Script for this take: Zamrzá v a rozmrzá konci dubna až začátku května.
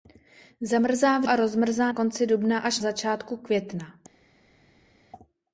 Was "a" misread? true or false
false